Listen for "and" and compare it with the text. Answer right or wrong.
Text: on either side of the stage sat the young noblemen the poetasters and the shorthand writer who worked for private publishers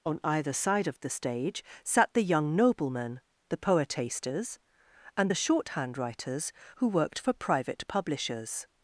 right